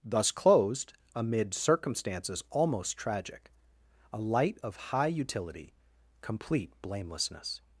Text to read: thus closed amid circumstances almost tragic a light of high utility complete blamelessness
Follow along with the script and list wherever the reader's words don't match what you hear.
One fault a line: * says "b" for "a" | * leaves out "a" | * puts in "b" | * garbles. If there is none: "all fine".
all fine